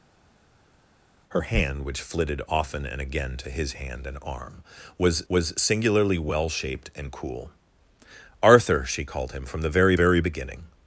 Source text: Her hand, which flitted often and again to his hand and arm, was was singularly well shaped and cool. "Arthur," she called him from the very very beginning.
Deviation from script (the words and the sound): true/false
false